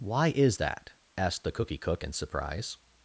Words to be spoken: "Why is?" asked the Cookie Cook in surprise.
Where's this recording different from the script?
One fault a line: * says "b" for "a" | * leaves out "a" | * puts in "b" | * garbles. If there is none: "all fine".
* puts in "that"